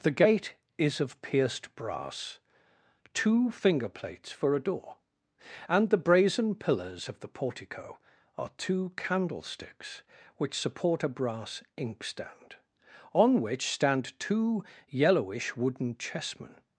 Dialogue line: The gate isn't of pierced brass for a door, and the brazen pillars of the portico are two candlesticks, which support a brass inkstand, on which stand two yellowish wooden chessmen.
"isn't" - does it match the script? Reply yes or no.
no